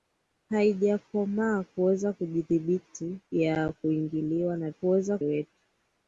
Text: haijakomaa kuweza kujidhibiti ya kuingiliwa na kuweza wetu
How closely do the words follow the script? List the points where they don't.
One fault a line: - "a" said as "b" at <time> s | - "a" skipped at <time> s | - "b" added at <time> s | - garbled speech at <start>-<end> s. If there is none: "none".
none